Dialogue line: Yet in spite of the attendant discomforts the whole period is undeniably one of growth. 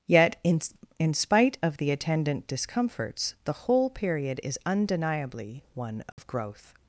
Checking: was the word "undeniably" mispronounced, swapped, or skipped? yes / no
no